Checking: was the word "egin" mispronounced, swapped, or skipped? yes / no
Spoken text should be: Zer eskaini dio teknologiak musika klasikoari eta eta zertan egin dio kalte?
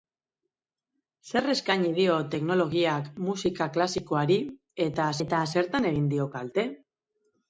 no